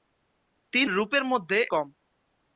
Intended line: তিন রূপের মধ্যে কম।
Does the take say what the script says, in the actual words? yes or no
yes